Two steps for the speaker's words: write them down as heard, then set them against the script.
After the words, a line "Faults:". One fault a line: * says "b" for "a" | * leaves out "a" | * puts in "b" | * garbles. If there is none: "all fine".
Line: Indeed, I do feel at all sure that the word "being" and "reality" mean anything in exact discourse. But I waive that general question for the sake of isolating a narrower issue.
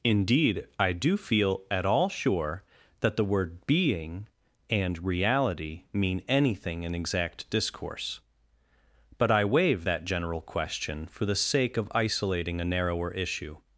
Indeed, I do feel at all sure that the word "being" and "reality" mean anything in exact discourse. But I waive that general question for the sake of isolating a narrower issue.
Faults:
all fine